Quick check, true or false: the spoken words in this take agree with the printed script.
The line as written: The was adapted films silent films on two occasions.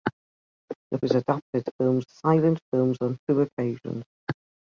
true